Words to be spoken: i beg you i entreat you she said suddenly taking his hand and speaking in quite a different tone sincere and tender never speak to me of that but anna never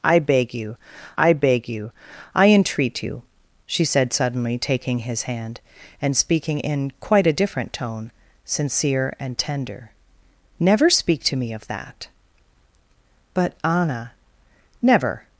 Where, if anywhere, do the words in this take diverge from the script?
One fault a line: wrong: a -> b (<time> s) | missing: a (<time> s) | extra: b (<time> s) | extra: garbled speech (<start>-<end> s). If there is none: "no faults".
extra: beg you i (1.3 s)